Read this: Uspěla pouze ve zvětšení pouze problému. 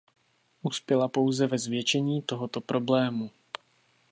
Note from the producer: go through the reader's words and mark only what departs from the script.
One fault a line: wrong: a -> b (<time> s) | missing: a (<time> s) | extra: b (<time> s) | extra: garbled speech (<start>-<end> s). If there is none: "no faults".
wrong: pouze -> tohoto (2.2 s)